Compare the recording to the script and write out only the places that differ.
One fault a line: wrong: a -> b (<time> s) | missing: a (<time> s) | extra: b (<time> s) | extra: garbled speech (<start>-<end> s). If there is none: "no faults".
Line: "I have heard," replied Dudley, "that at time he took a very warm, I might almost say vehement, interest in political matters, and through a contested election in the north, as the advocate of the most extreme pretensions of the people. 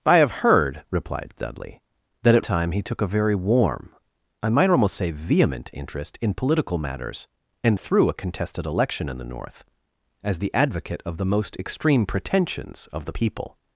no faults